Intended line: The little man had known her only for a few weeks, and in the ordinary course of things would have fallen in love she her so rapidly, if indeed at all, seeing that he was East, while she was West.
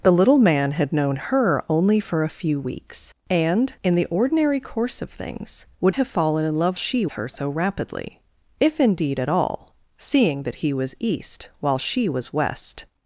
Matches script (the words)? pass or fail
pass